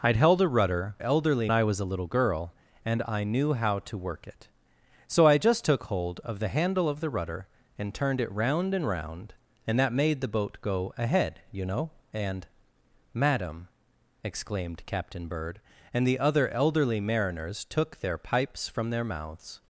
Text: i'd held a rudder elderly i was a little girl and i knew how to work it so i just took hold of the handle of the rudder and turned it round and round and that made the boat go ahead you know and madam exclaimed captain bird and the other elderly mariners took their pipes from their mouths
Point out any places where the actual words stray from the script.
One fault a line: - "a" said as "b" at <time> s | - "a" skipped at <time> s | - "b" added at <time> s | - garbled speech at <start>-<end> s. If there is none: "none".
none